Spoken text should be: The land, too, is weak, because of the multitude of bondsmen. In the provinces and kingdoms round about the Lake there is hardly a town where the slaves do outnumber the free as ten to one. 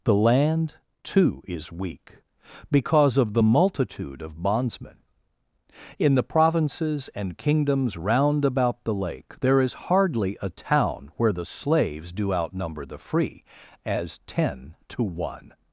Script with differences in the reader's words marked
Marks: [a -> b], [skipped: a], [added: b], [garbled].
The land, too, is weak, because of the multitude of bondsmen. In the provinces and kingdoms round about the Lake there is hardly a town where the slaves do outnumber the free as ten to one.